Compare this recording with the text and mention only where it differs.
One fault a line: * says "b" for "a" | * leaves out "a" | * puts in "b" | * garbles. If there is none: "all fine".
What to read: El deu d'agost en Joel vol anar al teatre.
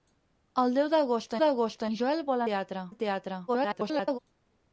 * puts in "d'agost"
* says "teatre" for "anar"
* garbles